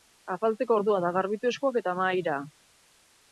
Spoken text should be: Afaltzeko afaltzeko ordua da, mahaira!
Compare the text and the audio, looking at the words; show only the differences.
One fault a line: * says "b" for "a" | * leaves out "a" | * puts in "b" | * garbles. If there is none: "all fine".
* leaves out "afaltzeko"
* puts in "garbitu eskuak eta"